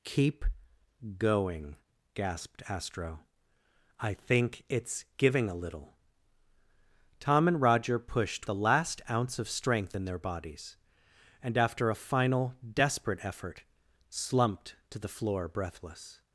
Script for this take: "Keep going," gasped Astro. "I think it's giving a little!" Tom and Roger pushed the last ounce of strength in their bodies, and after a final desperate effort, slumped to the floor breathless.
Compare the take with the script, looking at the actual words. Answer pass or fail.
pass